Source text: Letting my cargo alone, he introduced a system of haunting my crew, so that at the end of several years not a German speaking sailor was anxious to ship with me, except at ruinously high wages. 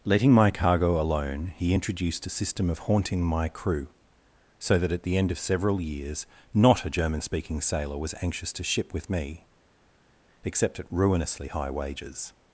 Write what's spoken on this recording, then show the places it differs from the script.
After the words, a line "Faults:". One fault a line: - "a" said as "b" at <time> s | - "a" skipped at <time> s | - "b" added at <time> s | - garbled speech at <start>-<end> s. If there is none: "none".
Letting my cargo alone, he introduced a system of haunting my crew, so that at the end of several years not a German speaking sailor was anxious to ship with me, except at ruinously high wages.
Faults:
none